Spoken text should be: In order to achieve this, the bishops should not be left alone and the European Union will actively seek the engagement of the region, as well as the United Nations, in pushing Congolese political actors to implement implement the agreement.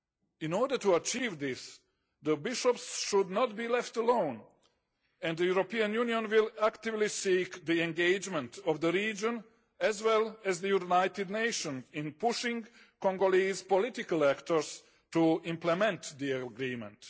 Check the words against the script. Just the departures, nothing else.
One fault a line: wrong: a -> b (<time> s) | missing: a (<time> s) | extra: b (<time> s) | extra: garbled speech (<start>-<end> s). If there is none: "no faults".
missing: implement (16.1 s)